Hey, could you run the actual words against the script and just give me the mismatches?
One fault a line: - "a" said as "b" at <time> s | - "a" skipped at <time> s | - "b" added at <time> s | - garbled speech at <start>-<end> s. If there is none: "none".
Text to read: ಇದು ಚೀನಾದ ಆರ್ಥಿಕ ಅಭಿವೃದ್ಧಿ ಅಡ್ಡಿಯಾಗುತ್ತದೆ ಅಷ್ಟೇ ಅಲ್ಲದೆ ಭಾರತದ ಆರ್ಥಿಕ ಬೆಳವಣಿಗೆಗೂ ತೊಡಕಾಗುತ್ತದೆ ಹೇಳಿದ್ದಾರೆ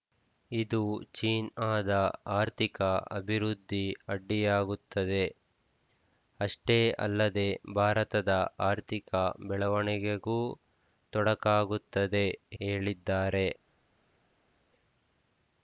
none